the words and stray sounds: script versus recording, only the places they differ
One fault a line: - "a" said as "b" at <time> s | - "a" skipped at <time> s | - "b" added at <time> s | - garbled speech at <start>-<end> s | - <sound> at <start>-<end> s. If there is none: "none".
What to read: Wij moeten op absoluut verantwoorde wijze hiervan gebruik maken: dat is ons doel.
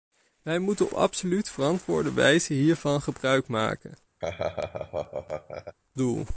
- "op" skipped at 0.9 s
- "dat is ons" skipped at 4.0 s
- laugh at 4.2-5.8 s